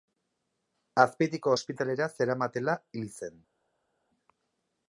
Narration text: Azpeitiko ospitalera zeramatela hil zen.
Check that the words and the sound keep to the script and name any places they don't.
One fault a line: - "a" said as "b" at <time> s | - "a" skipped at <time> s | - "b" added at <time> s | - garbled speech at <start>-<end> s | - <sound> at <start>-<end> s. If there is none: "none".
none